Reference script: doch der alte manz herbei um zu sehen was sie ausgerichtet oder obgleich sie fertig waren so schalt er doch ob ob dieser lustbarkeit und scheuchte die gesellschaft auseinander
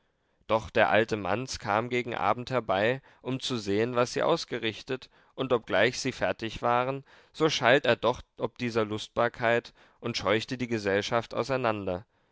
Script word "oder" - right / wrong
wrong